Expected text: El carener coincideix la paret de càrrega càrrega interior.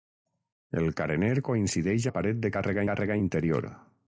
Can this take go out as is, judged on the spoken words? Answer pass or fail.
pass